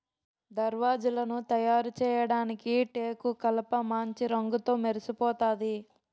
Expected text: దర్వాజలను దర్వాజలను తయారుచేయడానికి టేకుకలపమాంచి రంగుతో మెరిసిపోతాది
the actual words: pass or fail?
fail